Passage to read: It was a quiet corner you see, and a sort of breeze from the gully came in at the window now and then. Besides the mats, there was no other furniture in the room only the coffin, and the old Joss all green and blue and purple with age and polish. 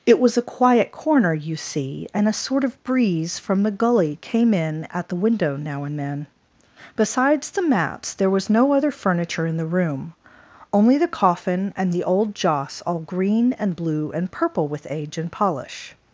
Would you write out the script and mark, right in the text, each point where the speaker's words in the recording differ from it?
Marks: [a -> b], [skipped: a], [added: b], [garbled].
It was a quiet corner you see, and a sort of breeze from the gully came in at the window now and then. Besides the mats, there was no other furniture in the room only the coffin, and the old Joss all green and blue and purple with age and polish.